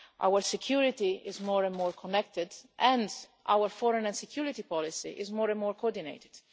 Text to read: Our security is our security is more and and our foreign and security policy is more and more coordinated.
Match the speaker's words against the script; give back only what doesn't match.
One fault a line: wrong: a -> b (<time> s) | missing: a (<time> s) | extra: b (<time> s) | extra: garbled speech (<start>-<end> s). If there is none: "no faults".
wrong: our security is -> more and (1.4 s)
wrong: and -> connected (1.9 s)